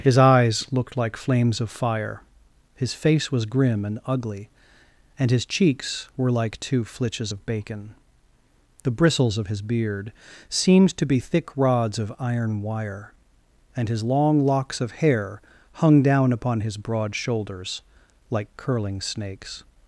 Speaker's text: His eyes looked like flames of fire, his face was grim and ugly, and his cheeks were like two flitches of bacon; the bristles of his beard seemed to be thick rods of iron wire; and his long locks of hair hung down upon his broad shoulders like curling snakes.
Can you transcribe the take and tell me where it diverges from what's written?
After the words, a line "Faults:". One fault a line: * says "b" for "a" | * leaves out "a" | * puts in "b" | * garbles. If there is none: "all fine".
His eyes looked like flames of fire, his face was grim and ugly, and his cheeks were like two flitches of bacon; the bristles of his beard seemed to be thick rods of iron wire; and his long locks of hair hung down upon his broad shoulders like curling snakes.
Faults:
all fine